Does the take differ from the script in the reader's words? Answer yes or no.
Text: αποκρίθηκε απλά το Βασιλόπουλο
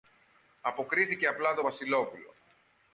no